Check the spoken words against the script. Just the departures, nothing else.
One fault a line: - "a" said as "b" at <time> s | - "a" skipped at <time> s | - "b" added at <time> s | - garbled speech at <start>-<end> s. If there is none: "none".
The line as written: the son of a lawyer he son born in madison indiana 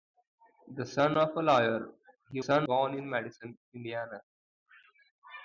none